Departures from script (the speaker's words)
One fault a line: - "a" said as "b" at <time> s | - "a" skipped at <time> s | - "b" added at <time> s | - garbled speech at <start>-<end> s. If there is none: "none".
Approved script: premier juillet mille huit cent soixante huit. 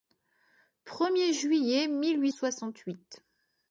- "cent" skipped at 2.3 s